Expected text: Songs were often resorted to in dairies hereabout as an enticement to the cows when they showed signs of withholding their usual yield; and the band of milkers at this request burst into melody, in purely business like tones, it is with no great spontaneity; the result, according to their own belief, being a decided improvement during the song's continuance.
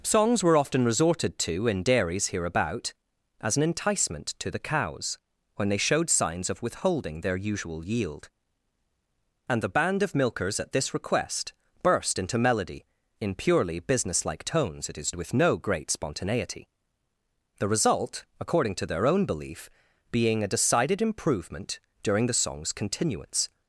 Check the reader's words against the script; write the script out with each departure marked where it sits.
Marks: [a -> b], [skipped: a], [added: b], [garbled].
Songs were often resorted to in dairies hereabout as an enticement to the cows when they showed signs of withholding their usual yield; and the band of milkers at this request burst into melody, in purely business like tones, it is with no great spontaneity; the result, according to their own belief, being a decided improvement during the song's continuance.